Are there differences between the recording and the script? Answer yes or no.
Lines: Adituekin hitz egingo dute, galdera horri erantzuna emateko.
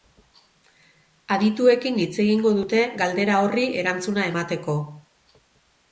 no